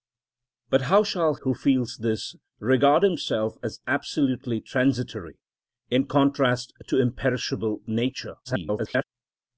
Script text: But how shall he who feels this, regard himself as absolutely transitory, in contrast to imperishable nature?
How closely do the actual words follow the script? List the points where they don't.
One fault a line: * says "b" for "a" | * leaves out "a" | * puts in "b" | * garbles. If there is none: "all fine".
* leaves out "he"
* garbles